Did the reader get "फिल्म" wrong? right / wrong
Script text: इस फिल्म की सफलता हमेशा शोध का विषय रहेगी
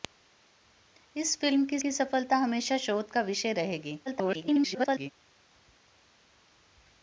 right